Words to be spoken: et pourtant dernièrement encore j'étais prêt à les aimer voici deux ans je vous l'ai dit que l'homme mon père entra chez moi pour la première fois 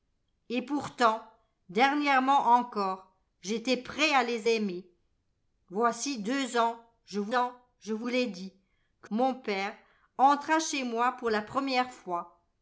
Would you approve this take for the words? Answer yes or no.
no